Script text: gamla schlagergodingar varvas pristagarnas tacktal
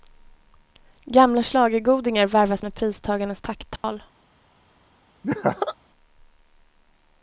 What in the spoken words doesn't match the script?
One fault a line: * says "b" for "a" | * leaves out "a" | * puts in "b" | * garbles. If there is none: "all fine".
* puts in "med"